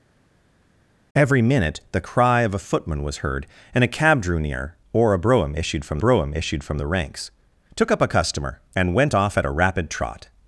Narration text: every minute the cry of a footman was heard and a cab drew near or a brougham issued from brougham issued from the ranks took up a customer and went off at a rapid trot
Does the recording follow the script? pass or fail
pass